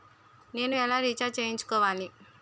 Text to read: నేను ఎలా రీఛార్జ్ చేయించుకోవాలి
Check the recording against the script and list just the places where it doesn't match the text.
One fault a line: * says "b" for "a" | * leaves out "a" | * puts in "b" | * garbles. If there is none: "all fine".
all fine